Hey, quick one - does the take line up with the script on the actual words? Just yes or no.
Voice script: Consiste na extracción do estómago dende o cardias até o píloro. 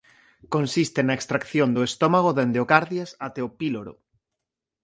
yes